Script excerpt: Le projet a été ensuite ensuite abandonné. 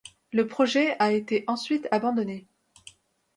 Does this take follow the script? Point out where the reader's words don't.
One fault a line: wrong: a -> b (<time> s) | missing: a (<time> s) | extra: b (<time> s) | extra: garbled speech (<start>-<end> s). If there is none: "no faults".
missing: ensuite (1.9 s)